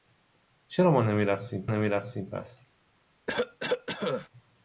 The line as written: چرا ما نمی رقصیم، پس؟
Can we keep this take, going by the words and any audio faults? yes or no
no